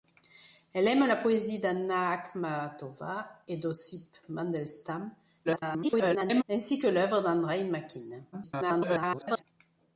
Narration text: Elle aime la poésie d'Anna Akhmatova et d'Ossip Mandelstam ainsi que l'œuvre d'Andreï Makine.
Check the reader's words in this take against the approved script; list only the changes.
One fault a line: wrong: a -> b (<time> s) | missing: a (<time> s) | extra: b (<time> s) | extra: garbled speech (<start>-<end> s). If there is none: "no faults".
extra: garbled speech (5.4-6.4 s)
extra: garbled speech (8.3-9.4 s)